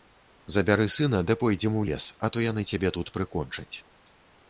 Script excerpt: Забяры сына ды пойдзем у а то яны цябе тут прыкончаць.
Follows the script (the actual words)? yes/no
no